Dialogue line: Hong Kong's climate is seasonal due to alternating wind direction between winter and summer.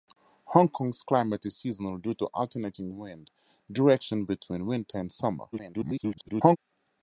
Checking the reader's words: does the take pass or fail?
fail